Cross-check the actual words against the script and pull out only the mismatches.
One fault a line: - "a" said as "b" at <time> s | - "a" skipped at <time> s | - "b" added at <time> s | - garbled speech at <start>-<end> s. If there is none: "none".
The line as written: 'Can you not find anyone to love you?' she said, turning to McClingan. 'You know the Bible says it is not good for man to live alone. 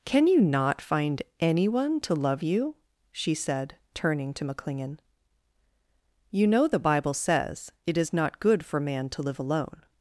none